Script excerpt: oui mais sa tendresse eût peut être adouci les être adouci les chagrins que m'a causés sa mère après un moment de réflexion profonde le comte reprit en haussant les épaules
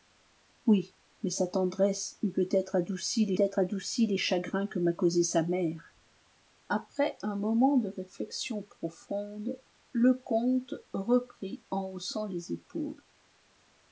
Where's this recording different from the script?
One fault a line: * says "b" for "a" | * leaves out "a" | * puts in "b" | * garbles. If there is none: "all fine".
all fine